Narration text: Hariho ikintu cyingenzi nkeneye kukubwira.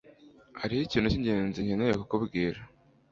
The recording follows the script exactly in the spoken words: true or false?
true